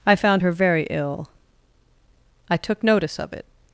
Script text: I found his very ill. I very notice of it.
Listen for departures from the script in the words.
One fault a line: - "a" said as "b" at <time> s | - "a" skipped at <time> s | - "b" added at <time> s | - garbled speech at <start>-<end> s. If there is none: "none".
- "his" said as "her" at 0.4 s
- "very" said as "took" at 2.6 s